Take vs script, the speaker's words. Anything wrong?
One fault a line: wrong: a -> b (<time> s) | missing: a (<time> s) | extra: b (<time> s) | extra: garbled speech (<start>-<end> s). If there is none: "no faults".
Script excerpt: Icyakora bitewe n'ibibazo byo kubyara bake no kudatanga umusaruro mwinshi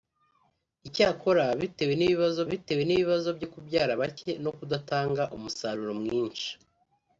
extra: bitewe n'ibibazo (2.5 s)